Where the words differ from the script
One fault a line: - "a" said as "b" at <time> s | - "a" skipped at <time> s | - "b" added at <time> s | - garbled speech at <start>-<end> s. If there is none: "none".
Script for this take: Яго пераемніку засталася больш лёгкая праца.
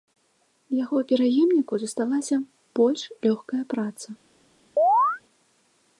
none